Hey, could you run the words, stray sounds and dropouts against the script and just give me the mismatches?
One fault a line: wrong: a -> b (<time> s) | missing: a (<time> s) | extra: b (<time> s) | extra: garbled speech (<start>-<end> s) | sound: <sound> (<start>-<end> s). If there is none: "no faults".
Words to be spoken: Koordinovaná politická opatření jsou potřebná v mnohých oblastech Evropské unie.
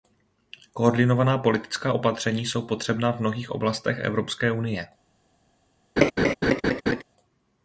sound: laugh (6.0-7.0 s)